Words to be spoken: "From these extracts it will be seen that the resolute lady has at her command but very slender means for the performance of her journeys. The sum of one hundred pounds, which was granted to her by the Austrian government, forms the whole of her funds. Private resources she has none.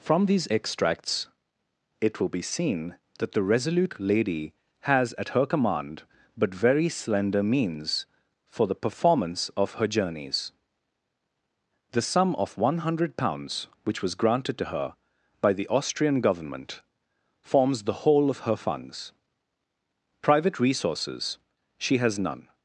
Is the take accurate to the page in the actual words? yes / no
yes